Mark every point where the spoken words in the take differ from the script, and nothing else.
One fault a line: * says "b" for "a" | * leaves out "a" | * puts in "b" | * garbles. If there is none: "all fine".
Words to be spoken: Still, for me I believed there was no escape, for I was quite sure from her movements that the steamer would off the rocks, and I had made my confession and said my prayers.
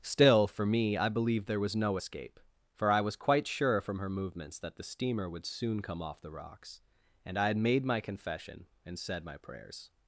* puts in "soon come"